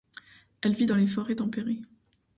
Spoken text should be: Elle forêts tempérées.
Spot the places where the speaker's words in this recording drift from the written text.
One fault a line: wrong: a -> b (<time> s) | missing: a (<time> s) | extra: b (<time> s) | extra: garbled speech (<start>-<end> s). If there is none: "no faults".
extra: vit dans les (0.7 s)